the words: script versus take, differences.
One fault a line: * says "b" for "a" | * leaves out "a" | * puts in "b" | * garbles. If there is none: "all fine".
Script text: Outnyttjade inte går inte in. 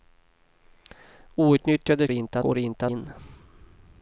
all fine